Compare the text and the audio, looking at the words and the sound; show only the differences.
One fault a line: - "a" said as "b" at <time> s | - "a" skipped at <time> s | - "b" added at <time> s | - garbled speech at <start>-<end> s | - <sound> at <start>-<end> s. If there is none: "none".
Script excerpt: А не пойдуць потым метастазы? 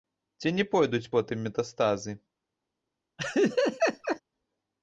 - "А" said as "Ці" at 0.4 s
- laugh at 3.2-4.2 s